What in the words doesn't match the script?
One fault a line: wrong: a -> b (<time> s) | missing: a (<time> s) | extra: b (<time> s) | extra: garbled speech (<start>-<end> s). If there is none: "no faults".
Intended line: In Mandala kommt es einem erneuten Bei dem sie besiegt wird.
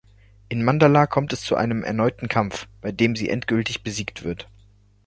extra: zu (1.4 s)
extra: Kampf (2.3 s)
extra: endgültig (3.3 s)